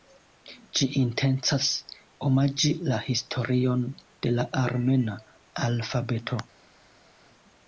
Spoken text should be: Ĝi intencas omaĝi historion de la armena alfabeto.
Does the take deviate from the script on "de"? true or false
false